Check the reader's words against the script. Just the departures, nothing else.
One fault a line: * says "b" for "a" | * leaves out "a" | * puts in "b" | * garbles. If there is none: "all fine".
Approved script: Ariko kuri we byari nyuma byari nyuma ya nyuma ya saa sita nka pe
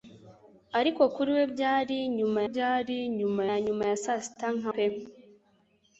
all fine